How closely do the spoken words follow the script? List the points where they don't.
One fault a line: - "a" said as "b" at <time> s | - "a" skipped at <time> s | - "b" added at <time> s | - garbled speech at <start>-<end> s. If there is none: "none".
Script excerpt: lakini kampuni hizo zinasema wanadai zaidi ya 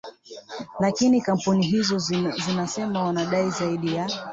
none